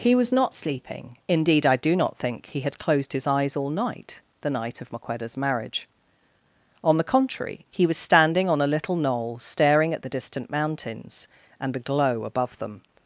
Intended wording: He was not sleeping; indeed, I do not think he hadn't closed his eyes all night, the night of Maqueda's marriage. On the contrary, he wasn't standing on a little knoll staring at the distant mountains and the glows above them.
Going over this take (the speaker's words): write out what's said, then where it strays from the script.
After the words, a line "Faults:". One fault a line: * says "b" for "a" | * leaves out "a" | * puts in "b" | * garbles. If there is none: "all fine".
He was not sleeping; indeed, I do not think he had closed his eyes all night, the night of Maqueda's marriage. On the contrary, he was standing on a little knoll staring at the distant mountains and the glow above them.
Faults:
* says "had" for "hadn't"
* says "was" for "wasn't"
* says "glow" for "glows"